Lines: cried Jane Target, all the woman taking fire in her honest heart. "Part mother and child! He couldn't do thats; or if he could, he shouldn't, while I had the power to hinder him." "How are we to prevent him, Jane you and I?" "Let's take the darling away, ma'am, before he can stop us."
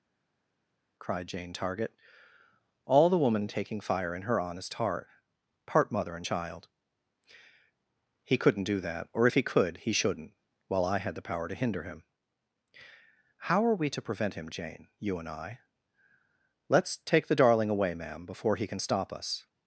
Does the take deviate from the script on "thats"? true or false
true